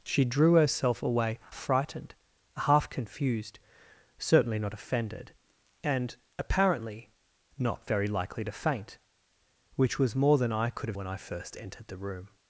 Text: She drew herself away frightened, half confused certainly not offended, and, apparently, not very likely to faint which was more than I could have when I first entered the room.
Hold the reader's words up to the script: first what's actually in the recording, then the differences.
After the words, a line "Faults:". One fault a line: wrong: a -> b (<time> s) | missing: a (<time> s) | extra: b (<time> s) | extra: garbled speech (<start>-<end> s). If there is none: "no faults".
She drew herself away frightened, half confused certainly not offended, and, apparently, not very likely to faint which was more than I could have when I first entered the room.
Faults:
no faults